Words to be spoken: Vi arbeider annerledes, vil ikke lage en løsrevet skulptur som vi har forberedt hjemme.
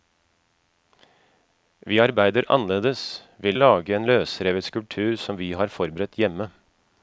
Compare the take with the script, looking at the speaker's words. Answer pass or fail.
fail